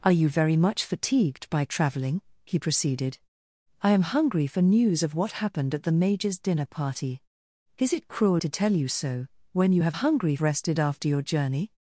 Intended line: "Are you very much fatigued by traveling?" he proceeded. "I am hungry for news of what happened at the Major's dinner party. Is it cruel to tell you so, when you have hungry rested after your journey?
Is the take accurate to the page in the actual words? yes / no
yes